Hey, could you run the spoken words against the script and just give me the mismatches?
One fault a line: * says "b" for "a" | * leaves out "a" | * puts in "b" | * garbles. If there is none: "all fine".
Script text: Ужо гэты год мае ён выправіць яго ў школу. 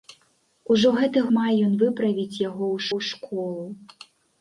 * leaves out "год"
* puts in "ў"